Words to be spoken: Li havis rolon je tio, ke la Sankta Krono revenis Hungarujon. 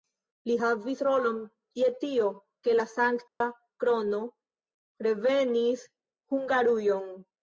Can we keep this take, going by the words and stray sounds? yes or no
no